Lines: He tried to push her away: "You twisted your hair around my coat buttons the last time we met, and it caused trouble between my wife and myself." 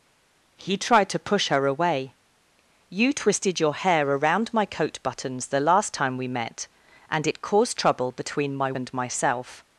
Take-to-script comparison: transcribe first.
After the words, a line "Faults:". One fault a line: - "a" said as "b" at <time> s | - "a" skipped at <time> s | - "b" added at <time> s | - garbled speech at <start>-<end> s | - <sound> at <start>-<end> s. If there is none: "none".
He tried to push her away: "You twisted your hair around my coat buttons the last time we met, and it caused trouble between my and myself."
Faults:
- "wife" skipped at 8.7 s